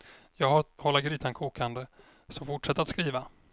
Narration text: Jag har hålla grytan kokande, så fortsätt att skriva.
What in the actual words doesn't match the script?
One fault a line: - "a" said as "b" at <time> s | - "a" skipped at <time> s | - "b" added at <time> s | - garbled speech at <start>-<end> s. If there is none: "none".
none